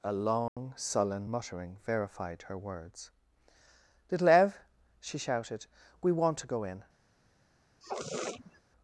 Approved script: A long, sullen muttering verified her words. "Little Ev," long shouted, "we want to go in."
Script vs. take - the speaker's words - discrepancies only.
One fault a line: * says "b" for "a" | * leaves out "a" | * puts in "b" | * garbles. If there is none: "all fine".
* says "she" for "long"